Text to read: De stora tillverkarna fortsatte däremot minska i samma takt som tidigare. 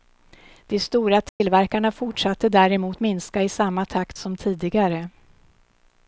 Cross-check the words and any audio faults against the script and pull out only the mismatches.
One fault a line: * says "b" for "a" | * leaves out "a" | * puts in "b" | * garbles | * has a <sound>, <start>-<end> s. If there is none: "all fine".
* has a dropout, 1.3-1.4 s